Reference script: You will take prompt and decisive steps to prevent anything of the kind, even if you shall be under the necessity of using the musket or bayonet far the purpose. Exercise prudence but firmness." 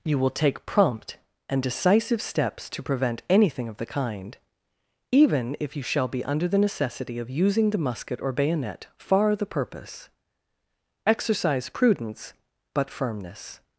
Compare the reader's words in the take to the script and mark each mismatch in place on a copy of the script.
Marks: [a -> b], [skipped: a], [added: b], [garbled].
You will take prompt and decisive steps to prevent anything of the kind, even if you shall be under the necessity of using the musket or bayonet far the purpose. Exercise prudence but firmness."